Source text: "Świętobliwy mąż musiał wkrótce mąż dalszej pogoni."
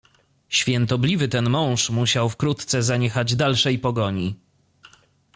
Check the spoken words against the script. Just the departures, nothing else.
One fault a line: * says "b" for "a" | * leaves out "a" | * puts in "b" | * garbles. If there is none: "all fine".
* puts in "ten"
* says "zaniechać" for "mąż"